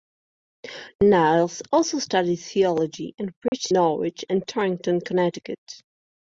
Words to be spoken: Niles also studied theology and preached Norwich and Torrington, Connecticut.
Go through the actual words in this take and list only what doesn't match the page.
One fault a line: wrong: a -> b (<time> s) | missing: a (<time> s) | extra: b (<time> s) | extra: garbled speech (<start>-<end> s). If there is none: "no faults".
no faults